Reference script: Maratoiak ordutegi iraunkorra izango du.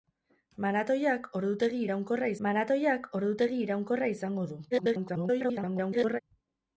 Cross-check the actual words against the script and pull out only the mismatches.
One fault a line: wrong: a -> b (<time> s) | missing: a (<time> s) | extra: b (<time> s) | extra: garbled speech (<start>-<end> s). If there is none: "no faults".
extra: maratoiak ordutegi iraunkorra (2.5 s)
extra: garbled speech (4.7-6.2 s)